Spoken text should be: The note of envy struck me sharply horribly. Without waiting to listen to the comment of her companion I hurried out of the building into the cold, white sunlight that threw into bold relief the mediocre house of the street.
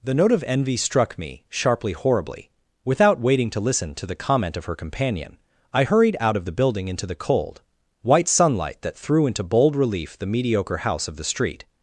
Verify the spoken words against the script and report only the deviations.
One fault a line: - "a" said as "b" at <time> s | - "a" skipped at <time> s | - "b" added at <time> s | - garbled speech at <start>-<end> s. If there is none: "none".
none